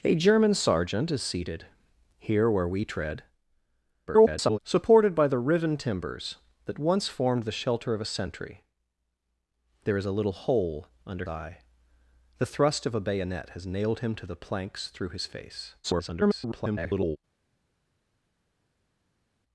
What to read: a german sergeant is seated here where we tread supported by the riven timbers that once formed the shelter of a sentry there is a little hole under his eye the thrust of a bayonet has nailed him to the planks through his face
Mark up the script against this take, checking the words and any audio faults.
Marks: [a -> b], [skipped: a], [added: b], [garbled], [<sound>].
a german sergeant is seated here where we tread [garbled] supported by the riven timbers that once formed the shelter of a sentry there is a little hole under [skipped: his] eye the thrust of a bayonet has nailed him to the planks through his face [garbled]